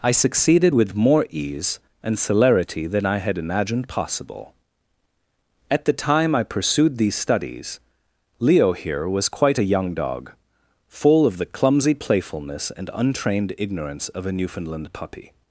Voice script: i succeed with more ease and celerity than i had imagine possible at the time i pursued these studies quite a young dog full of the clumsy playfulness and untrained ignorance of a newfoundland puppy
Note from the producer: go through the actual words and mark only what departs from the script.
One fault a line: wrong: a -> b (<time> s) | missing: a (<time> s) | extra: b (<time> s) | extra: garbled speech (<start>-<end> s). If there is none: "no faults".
wrong: succeed -> succeeded (0.1 s)
wrong: imagine -> imagined (3.4 s)
extra: leo here was (8.4 s)